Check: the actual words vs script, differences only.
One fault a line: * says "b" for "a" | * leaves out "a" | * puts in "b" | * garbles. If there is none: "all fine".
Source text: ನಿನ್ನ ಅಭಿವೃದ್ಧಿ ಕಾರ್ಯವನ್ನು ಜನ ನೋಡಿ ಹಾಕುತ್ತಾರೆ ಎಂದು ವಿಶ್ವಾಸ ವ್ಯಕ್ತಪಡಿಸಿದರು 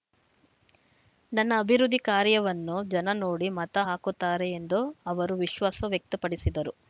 * says "ನನ್ನ" for "ನಿನ್ನ"
* puts in "ಮತ"
* puts in "ಅವರು"